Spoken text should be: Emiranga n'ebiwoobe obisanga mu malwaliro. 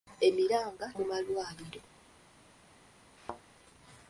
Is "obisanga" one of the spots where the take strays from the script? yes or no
yes